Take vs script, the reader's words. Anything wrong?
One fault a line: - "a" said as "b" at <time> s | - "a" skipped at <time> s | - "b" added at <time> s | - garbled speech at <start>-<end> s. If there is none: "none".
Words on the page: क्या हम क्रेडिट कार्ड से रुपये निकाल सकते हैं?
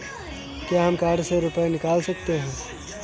- "क्रेडिट" skipped at 0.9 s